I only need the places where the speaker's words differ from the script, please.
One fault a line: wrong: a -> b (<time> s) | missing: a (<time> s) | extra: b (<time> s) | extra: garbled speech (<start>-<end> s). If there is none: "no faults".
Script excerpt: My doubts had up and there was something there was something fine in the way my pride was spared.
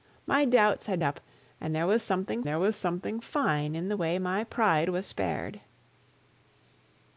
no faults